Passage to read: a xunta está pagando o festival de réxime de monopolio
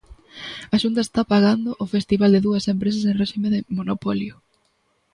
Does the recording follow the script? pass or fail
fail